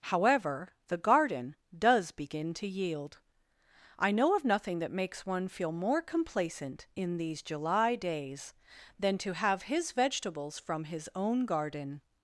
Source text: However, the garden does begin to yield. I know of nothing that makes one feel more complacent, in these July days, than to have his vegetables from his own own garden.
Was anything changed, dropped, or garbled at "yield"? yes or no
no